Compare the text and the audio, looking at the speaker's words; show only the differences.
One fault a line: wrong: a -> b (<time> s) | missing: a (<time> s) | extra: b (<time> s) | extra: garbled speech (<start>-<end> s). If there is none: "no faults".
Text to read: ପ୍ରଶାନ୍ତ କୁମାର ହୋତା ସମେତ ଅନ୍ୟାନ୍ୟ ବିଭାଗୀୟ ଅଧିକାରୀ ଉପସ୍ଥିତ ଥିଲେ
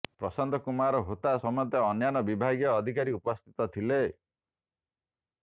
no faults